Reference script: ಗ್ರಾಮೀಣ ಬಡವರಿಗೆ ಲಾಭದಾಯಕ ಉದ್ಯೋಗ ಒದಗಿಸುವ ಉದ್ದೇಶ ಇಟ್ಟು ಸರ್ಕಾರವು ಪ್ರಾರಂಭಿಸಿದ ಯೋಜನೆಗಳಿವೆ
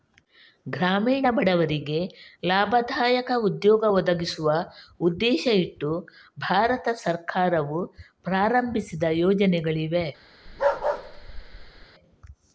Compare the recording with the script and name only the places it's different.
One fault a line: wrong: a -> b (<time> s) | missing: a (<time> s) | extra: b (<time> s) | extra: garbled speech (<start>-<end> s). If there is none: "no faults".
extra: ಭಾರತ (6.4 s)